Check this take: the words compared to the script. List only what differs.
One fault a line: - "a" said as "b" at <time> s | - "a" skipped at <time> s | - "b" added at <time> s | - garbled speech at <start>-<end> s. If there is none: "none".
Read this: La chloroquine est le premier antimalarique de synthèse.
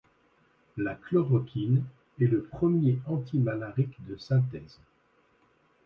none